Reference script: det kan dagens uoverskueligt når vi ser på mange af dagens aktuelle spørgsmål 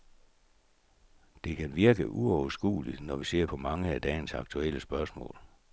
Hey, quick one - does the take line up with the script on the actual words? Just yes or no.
no